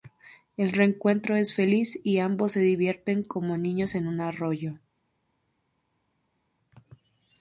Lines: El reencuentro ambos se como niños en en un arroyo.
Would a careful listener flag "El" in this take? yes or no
no